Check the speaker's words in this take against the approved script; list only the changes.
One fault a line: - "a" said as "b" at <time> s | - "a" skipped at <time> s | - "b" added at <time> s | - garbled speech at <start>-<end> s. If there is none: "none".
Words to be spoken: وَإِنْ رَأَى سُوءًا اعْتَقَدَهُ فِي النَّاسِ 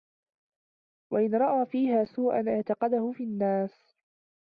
- "فِيهَا" added at 1.6 s